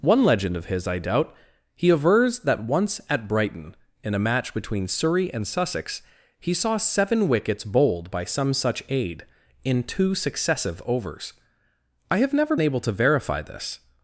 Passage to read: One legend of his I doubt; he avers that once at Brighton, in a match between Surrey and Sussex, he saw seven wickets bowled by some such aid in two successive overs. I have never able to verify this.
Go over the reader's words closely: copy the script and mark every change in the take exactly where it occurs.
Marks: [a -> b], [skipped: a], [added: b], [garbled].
One legend of his I doubt; he avers that once at Brighton, in a match between Surrey and Sussex, he saw seven wickets bowled by some such aid in two successive overs. I have never able to verify this.